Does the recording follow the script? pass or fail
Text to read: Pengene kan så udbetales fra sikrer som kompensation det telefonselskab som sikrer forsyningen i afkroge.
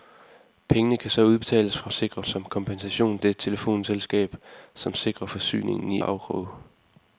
pass